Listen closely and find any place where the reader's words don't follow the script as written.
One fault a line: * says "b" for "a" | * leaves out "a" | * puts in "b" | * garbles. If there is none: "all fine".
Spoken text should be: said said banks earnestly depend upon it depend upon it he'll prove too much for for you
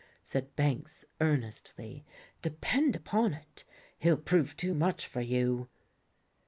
* leaves out "said"
* leaves out "depend upon it"
* leaves out "for"